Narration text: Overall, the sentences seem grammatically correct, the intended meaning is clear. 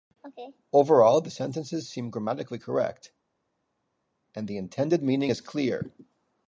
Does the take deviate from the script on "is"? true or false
false